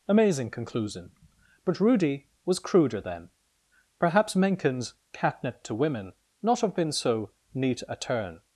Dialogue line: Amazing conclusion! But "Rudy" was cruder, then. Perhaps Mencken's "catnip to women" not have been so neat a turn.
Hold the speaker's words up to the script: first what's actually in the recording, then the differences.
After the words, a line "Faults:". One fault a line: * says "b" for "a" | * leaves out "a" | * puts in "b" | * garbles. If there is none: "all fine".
Amazing conclusion! But "Rudy" was cruder, then. Perhaps Mencken's "catnip to women" not have been so neat a turn.
Faults:
all fine